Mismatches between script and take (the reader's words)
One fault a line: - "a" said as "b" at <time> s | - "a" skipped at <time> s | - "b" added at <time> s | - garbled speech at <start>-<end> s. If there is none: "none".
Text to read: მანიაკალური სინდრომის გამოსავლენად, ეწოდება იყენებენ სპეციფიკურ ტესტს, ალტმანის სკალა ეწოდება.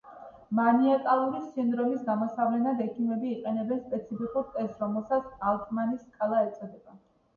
- "ეწოდება" said as "ექიმები" at 2.9 s
- "რომელსაც" added at 4.8 s